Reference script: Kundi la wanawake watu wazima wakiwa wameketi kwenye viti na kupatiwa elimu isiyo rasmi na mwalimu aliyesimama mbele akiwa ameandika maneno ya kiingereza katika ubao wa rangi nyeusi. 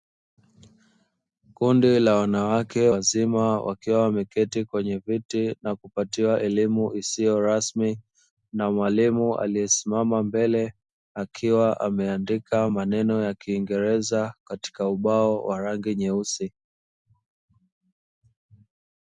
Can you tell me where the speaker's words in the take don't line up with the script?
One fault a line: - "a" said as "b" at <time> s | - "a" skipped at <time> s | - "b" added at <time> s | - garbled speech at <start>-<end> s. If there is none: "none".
- "watu" skipped at 2.9 s